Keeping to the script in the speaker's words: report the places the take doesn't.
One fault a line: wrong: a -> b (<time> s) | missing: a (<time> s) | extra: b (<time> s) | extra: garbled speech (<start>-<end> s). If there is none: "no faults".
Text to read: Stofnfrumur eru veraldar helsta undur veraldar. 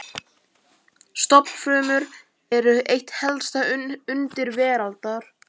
wrong: veraldar -> eitt (3.0 s)